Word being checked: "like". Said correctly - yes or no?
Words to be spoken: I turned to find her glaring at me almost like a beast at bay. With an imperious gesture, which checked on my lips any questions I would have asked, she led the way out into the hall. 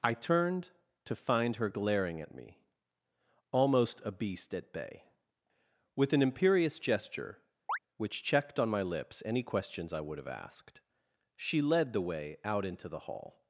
no